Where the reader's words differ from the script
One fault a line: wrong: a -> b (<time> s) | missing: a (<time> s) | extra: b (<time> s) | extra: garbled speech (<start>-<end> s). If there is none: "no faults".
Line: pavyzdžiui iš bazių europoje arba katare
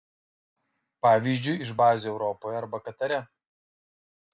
no faults